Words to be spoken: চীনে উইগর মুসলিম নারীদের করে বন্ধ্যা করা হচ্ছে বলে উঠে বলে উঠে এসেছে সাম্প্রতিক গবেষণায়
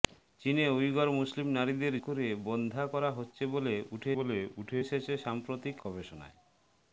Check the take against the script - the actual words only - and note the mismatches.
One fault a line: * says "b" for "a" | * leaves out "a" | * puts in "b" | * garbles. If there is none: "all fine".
all fine